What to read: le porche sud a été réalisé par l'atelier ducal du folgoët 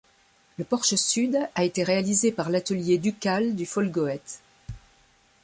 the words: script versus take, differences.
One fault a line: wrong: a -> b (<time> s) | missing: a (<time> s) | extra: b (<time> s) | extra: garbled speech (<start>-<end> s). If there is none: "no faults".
no faults